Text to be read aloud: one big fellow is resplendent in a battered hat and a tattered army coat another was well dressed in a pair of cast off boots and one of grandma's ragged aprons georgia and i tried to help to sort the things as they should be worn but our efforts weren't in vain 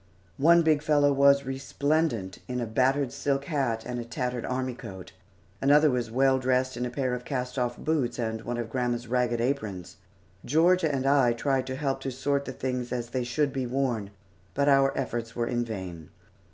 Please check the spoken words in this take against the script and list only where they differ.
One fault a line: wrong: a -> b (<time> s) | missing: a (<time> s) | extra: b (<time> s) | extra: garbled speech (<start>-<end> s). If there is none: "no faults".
wrong: is -> was (1.1 s)
extra: silk (3.1 s)
wrong: weren't -> were (15.4 s)